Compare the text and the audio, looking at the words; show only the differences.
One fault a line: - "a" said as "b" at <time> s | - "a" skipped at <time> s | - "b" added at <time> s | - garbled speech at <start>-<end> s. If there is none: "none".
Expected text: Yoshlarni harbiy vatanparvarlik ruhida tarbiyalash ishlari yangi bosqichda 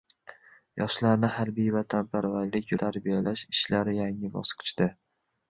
- "ruhida" skipped at 2.7 s